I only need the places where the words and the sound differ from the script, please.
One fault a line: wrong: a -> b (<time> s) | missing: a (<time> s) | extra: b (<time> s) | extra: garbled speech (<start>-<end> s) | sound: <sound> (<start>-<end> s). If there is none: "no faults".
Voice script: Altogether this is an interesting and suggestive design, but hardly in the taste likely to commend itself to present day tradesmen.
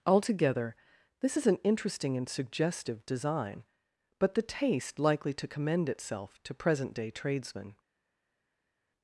missing: hardly in (4.3 s)